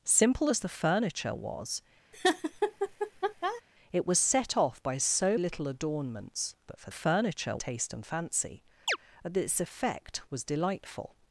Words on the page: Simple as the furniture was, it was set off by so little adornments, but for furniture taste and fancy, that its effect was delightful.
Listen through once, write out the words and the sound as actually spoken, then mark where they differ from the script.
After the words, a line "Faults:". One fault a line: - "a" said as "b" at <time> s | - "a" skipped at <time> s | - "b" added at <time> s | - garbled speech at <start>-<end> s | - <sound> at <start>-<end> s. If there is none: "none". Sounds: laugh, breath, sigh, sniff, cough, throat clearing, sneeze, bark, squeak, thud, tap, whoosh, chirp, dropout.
Simple as the furniture was, it was set off by so little adornments, but for furniture taste and fancy, that its effect was delightful.
Faults:
- laugh at 2.1-3.6 s
- chirp at 8.9-9.0 s